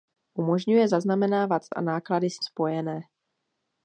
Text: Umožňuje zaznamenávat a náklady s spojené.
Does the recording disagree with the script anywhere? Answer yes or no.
no